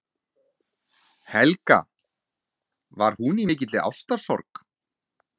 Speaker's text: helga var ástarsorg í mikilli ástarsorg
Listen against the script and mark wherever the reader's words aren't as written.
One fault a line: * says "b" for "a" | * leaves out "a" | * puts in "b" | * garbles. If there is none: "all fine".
* says "hún" for "ástarsorg"